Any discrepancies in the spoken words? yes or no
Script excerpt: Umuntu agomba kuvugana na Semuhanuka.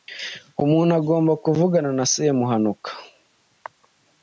no